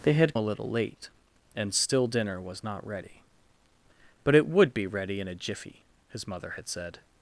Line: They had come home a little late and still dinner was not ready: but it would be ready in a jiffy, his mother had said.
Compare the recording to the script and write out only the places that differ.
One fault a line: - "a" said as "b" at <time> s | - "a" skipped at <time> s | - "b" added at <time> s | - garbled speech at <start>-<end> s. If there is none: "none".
- "come home" skipped at 0.3 s